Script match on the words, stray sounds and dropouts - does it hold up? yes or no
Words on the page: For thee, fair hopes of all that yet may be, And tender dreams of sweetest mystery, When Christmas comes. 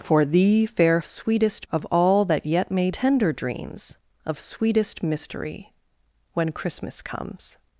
no